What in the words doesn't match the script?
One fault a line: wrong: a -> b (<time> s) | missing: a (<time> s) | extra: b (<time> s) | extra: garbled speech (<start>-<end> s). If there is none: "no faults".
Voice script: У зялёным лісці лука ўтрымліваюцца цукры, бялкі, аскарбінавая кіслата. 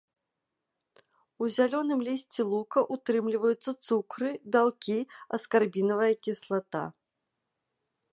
no faults